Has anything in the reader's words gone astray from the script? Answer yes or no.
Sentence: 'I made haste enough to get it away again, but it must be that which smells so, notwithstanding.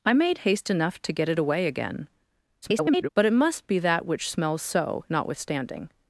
yes